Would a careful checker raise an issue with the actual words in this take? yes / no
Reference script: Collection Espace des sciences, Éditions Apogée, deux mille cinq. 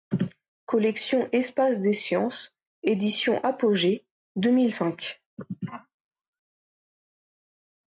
no